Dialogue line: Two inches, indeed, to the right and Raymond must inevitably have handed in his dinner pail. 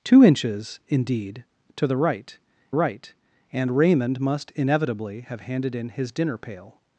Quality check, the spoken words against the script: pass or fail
fail